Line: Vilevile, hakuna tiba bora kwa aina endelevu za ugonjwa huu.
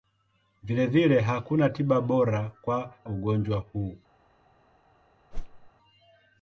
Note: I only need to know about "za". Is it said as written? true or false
false